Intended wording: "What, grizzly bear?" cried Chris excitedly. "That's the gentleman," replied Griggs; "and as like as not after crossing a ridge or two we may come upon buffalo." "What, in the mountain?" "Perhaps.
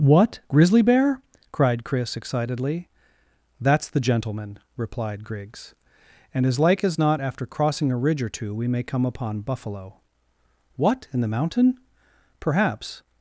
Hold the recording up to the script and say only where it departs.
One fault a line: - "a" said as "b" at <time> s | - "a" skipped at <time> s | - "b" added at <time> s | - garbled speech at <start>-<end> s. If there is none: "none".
none